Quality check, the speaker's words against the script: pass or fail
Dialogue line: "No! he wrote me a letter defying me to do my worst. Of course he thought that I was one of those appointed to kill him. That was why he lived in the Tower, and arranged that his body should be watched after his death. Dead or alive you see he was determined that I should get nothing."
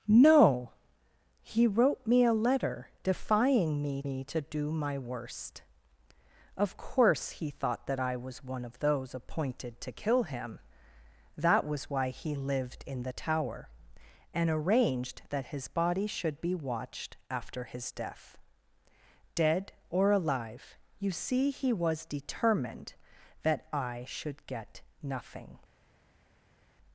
fail